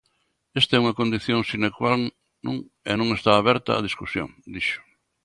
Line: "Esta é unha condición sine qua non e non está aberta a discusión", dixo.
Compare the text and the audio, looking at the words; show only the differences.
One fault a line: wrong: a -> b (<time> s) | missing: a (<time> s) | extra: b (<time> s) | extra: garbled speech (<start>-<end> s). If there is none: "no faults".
no faults